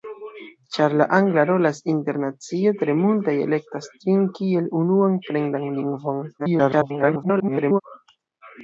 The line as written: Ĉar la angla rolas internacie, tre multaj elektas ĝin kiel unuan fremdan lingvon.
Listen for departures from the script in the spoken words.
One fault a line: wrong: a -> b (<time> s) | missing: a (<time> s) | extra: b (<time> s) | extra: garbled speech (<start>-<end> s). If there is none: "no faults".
extra: garbled speech (6.4-7.8 s)